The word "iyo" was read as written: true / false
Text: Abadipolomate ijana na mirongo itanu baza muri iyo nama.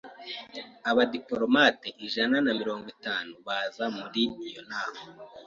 true